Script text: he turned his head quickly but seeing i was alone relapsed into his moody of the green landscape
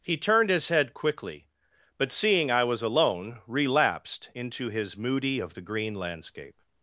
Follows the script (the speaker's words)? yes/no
yes